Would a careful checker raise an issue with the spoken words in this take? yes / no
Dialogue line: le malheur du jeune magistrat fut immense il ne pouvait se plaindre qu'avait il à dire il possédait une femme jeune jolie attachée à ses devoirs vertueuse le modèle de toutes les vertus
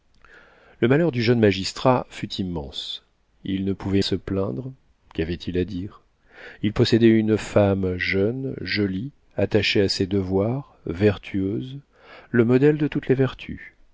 no